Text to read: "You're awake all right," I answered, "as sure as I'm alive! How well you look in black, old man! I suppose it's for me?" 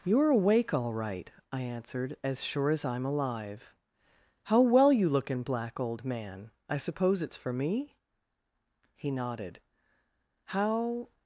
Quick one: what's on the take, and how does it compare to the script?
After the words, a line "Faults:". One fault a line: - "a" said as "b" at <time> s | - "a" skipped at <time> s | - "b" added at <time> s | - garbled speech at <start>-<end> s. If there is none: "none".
"You're awake all right," I answered, "as sure as I'm alive! How well you look in black, old man! I suppose it's for me?" He nodded. "How
Faults:
- "He nodded How" added at 8.9 s